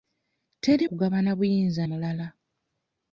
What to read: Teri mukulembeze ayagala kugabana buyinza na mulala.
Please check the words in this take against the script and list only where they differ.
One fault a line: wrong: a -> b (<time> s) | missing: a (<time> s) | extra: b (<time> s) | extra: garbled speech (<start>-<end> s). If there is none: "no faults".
missing: mukulembeze ayagala (0.8 s)
missing: na (1.8 s)